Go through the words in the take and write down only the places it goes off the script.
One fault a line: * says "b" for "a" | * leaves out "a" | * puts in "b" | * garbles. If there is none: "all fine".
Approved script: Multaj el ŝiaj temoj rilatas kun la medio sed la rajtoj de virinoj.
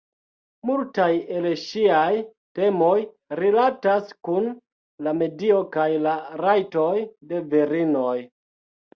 * says "kaj" for "sed"